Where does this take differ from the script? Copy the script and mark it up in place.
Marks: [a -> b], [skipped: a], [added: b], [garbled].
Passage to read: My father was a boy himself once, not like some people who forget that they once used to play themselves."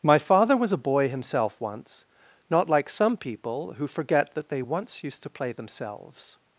My father was a boy himself once, not like some people who forget that they once used to play themselves."